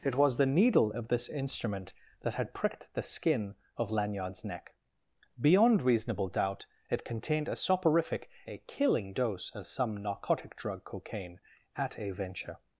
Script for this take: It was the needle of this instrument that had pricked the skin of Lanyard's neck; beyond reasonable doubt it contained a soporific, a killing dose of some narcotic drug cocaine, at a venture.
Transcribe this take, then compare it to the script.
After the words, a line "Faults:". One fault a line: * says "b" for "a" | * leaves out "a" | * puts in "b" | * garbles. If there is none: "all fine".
It was the needle of this instrument that had pricked the skin of Lanyard's neck; beyond reasonable doubt it contained a soporific, a killing dose of some narcotic drug cocaine, at a venture.
Faults:
all fine